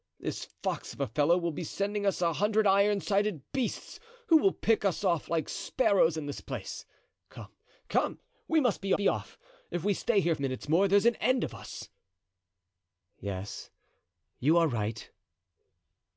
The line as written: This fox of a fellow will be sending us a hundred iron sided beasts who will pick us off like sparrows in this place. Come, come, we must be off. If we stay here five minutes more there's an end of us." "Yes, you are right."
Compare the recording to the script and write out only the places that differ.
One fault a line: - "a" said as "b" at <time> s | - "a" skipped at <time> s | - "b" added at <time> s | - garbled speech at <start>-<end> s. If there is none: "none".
- "be" added at 8.9 s
- "five" skipped at 10.3 s